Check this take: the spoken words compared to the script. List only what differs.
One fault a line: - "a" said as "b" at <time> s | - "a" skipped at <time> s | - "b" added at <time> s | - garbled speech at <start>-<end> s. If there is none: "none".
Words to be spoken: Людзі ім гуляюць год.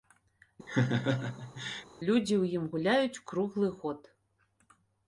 - "ў" added at 2.4 s
- "круглы" added at 3.3 s